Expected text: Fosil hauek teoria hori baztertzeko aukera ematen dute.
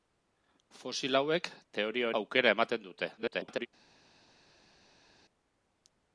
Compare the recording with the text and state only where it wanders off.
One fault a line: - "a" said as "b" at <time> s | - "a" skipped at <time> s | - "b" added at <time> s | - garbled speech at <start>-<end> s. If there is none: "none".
- "hori baztertzeko" skipped at 2.1 s
- garbled speech at 3.2-3.7 s